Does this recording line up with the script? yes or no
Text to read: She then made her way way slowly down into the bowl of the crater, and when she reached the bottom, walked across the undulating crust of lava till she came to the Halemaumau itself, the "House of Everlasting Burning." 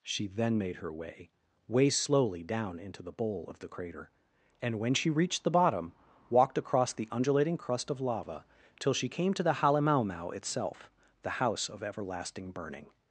yes